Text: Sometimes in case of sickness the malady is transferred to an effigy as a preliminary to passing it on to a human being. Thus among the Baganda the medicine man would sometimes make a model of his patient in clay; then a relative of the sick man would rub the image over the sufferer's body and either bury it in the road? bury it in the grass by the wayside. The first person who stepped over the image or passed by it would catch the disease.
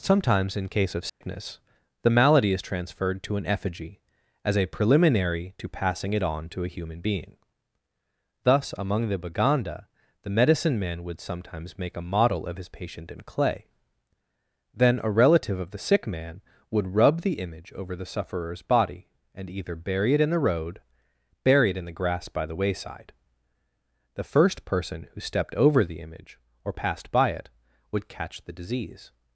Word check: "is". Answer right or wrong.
right